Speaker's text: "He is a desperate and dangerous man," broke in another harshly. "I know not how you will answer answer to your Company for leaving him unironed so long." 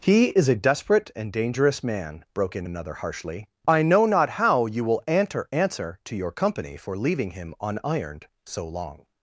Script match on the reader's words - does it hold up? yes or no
yes